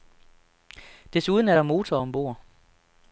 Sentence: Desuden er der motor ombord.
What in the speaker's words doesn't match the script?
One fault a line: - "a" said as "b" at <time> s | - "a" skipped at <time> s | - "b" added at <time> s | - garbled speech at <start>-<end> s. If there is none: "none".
none